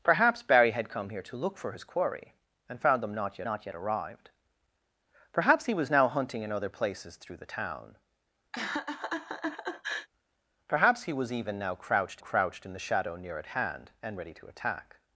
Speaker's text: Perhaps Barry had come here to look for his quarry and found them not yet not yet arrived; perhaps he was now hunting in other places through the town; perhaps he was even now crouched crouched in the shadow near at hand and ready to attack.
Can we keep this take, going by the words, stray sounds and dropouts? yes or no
no